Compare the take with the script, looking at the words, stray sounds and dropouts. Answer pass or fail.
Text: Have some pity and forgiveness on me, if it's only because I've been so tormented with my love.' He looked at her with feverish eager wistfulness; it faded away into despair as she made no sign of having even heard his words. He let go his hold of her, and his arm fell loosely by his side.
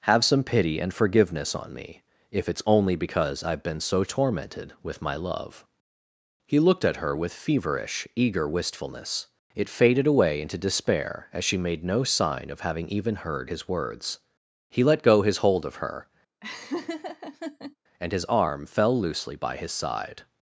fail